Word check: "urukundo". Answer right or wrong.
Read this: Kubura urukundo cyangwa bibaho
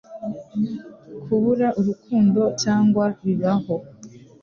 right